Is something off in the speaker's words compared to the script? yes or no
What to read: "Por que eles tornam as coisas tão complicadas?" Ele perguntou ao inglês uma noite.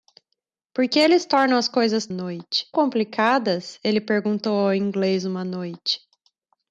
yes